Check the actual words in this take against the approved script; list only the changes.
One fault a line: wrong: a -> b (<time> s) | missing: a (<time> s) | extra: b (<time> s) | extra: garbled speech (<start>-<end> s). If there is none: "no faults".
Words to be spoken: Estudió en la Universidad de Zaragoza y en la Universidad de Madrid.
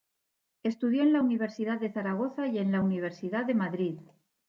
no faults